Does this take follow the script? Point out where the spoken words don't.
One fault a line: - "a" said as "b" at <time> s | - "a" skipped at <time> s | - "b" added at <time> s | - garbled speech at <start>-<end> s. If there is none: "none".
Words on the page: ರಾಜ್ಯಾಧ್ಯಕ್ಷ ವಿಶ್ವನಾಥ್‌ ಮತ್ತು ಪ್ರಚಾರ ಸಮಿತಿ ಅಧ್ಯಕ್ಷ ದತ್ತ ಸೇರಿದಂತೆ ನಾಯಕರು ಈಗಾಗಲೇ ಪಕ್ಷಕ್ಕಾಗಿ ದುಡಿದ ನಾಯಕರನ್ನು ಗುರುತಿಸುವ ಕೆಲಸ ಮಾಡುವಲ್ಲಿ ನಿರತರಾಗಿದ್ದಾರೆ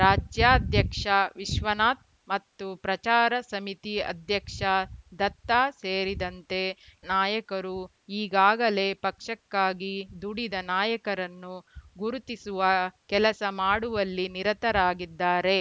none